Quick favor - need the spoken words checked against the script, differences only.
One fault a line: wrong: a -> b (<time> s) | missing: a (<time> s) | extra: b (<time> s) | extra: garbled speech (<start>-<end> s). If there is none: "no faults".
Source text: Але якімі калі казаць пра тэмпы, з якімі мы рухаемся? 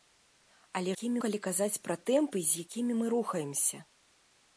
no faults